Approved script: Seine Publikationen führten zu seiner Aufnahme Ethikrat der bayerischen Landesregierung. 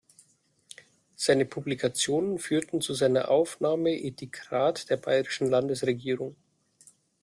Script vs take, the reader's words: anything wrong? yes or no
no